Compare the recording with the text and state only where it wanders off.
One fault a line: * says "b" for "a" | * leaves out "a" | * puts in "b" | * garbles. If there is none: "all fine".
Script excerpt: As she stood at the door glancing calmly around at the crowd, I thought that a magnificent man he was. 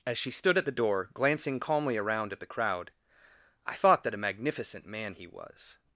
all fine